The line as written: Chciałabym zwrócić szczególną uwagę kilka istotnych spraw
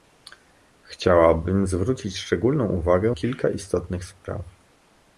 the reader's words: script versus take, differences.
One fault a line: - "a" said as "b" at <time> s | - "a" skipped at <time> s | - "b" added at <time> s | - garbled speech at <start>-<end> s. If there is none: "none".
none